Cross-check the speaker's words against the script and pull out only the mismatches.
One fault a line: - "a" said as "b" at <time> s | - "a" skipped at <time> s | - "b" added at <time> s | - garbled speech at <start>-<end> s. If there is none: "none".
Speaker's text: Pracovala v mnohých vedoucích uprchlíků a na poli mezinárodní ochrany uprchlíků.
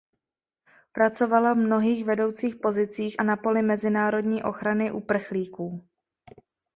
- "uprchlíků" said as "pozicích" at 2.5 s